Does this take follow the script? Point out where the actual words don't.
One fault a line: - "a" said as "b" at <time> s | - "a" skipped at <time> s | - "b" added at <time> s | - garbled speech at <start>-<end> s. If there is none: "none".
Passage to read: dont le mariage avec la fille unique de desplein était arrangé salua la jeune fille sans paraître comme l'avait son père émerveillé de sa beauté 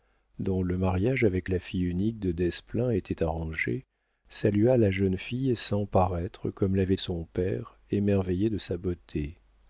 none